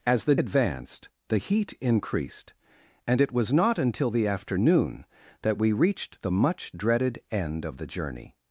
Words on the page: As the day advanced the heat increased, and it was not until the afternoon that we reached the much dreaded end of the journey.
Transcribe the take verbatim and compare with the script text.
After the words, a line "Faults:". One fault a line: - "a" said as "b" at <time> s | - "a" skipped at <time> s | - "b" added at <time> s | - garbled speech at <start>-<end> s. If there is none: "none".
As the advanced the heat increased, and it was not until the afternoon that we reached the much dreaded end of the journey.
Faults:
- "day" skipped at 0.3 s